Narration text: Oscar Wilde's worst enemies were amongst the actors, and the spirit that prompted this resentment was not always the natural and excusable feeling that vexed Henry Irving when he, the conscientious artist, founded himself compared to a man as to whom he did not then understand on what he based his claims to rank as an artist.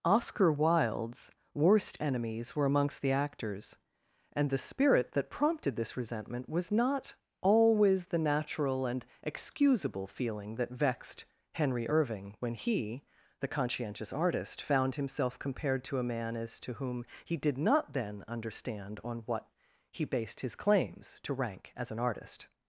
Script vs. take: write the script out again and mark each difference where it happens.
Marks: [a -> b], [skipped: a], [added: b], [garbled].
Oscar Wilde's worst enemies were amongst the actors, and the spirit that prompted this resentment was not always the natural and excusable feeling that vexed Henry Irving when he, the conscientious artist, [founded -> found] himself compared to a man as to whom he did not then understand on what he based his claims to rank as an artist.